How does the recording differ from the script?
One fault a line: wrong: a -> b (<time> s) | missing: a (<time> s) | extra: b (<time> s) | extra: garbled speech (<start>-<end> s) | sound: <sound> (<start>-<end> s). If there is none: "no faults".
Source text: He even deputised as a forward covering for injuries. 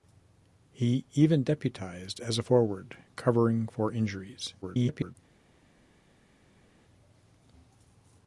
extra: garbled speech (4.6-5.2 s)